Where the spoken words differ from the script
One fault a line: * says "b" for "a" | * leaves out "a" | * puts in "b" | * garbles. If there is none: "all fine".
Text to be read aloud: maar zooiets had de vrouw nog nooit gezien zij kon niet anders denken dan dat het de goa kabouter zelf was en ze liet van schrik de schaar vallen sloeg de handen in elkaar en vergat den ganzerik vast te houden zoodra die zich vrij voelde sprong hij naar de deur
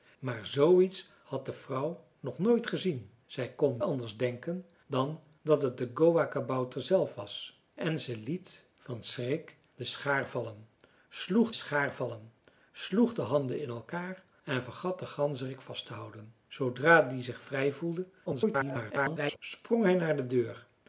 * leaves out "niet"
* puts in "schaar vallen sloeg"
* garbles